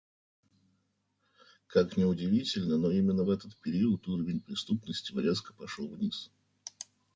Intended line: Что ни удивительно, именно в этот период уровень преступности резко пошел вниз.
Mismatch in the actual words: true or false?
true